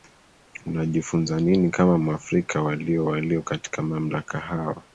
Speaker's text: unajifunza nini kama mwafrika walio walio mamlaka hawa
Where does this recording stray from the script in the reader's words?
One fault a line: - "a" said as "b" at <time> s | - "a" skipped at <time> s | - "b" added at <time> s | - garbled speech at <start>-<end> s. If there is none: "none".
- "katika" added at 3.4 s